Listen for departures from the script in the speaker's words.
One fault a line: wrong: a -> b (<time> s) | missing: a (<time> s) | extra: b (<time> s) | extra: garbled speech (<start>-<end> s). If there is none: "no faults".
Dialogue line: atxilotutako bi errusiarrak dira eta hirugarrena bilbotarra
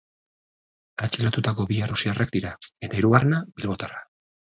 no faults